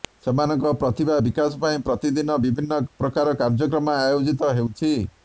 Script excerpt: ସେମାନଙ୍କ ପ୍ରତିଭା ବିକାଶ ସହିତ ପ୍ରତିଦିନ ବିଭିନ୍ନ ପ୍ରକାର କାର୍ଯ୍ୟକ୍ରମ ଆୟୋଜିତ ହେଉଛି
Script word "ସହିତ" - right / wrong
wrong